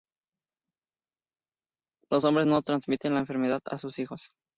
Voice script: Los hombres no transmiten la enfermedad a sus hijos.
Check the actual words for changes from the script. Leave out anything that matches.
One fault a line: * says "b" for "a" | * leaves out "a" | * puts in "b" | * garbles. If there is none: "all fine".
all fine